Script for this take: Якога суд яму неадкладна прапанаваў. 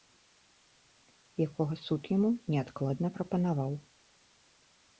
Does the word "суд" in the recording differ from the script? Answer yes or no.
no